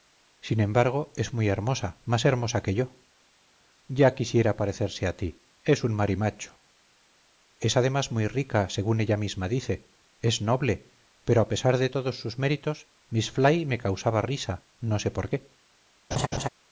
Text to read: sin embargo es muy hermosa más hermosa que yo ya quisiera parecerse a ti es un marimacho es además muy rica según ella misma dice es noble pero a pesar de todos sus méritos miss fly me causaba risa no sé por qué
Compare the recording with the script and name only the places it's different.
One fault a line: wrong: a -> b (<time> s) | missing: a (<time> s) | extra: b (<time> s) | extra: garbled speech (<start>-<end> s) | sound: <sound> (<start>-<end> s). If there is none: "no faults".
sound: laugh (16.1-16.5 s)